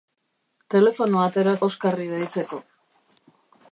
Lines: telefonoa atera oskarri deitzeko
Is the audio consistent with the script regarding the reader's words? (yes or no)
yes